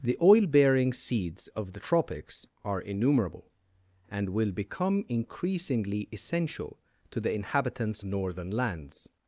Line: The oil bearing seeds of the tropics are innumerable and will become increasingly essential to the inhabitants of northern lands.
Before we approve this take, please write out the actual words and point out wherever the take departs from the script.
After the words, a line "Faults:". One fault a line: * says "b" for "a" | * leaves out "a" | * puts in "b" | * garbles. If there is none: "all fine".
The oil bearing seeds of the tropics are innumerable and will become increasingly essential to the inhabitants northern lands.
Faults:
* leaves out "of"